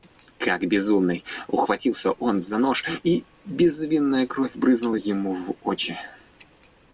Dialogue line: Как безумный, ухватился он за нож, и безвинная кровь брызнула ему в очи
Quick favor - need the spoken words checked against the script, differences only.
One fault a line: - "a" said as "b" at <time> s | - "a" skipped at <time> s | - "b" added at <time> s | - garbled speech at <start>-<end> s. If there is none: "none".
none